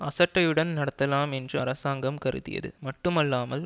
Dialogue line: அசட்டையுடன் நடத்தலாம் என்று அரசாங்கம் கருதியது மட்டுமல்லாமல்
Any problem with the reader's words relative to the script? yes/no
no